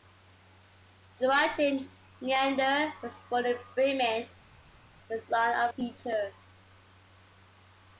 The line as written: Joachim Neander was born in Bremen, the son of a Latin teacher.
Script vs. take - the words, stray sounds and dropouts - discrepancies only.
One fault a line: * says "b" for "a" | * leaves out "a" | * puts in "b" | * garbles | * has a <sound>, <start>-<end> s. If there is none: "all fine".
* leaves out "a Latin"